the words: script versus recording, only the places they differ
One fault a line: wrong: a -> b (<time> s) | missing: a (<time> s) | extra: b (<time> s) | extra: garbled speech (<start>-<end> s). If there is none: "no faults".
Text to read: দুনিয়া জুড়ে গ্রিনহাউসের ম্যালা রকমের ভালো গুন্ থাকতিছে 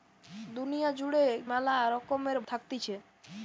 missing: গ্রিনহাউসের (1.2 s)
missing: ভালো গুন্ (2.4 s)